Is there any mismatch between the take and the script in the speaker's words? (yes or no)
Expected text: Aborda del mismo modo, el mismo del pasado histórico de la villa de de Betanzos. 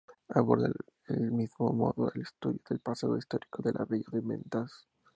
yes